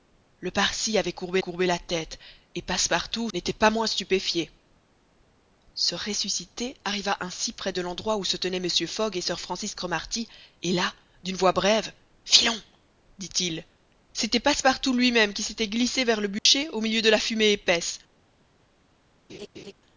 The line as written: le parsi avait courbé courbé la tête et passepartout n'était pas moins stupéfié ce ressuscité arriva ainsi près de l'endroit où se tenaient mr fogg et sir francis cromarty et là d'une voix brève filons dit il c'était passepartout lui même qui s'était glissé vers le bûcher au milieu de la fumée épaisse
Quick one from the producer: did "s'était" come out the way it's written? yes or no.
yes